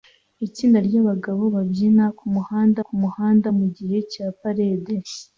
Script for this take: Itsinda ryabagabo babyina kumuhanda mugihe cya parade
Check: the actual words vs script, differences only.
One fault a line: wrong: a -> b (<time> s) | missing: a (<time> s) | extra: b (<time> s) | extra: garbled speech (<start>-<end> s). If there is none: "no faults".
extra: kumuhanda (2.8 s)